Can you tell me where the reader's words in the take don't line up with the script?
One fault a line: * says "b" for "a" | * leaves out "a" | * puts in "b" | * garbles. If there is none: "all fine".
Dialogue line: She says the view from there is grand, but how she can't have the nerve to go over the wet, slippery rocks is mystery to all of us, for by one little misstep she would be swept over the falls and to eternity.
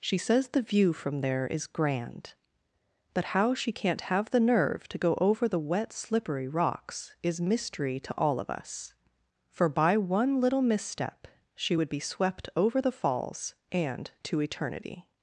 all fine